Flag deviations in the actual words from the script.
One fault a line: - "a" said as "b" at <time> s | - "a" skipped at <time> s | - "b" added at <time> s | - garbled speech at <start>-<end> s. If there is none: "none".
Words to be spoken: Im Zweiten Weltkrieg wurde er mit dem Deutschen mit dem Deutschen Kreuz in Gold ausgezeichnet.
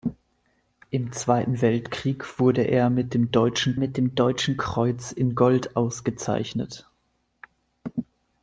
none